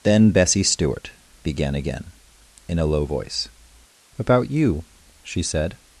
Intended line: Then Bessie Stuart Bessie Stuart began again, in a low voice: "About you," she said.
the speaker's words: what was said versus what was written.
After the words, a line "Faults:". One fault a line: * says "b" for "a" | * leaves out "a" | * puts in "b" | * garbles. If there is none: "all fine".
Then Bessie Stuart began again, in a low voice: "About you," she said.
Faults:
* leaves out "Bessie Stuart"